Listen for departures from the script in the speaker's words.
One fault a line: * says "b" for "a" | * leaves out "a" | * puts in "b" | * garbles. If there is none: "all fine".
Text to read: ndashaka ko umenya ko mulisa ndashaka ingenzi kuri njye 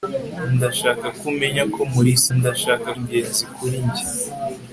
all fine